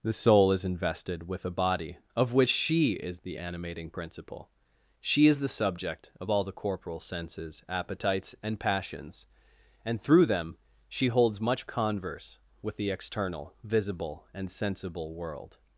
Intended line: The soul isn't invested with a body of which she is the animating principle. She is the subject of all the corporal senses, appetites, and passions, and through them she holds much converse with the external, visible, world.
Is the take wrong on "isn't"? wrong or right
wrong